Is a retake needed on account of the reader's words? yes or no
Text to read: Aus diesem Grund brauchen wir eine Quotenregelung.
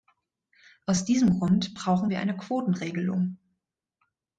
no